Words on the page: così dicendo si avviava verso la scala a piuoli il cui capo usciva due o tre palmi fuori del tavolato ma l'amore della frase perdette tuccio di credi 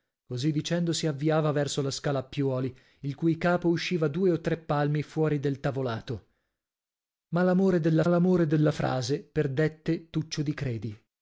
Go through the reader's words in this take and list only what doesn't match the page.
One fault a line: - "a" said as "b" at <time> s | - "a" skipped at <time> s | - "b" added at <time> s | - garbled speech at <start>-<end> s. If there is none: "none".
- "l'amore della" added at 8.1 s